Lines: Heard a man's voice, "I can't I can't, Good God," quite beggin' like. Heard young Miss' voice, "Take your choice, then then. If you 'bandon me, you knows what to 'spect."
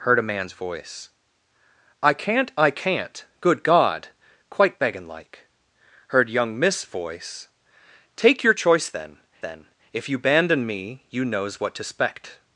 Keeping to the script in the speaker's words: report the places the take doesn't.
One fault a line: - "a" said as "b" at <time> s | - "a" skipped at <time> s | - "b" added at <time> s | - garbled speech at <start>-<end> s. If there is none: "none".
none